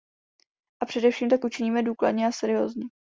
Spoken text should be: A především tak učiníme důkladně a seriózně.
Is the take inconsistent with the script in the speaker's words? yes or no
no